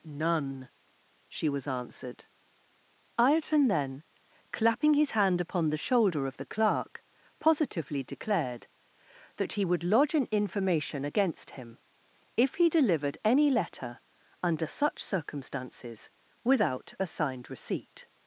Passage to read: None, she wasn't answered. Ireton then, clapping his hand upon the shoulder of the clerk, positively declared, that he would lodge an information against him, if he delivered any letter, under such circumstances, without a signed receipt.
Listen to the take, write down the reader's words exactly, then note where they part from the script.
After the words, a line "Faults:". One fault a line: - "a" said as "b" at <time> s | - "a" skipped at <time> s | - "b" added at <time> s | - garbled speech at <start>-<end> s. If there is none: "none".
None, she was answered. Ireton then, clapping his hand upon the shoulder of the clerk, positively declared, that he would lodge an information against him, if he delivered any letter, under such circumstances, without a signed receipt.
Faults:
- "wasn't" said as "was" at 1.5 s